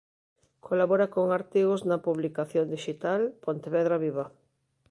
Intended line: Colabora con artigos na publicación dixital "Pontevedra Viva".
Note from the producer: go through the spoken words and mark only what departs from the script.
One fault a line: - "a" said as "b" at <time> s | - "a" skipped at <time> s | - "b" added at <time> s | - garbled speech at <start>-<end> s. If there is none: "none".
none